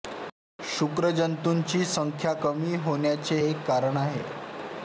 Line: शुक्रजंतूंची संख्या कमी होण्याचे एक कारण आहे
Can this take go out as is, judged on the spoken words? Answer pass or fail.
pass